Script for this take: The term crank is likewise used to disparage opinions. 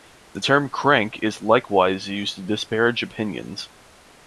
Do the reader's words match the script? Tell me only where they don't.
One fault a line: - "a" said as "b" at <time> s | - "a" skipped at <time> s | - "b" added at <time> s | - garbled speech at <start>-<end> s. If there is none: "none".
none